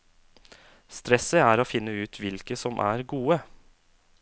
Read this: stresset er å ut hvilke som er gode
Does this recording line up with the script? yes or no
no